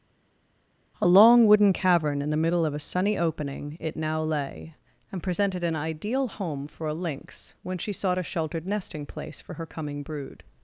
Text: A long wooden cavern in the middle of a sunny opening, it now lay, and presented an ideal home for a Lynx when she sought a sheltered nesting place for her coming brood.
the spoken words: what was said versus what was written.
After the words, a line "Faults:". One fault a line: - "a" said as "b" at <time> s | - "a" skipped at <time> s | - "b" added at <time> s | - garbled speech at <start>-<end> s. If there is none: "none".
A long wooden cavern in the middle of a sunny opening, it now lay, and presented an ideal home for a Lynx when she sought a sheltered nesting place for her coming brood.
Faults:
none